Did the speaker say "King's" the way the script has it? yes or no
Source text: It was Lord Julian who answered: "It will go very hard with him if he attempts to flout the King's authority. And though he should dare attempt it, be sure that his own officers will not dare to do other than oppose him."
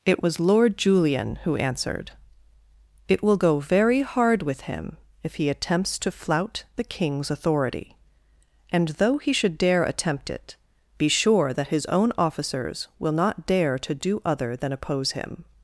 yes